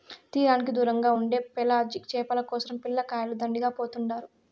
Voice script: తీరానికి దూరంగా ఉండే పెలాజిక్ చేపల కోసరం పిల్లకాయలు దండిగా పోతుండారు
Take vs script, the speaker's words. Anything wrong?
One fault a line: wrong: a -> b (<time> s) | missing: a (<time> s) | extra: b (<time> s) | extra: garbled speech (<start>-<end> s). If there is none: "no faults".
no faults